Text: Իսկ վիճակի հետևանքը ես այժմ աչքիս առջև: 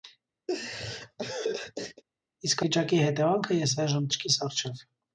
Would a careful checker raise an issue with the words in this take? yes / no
no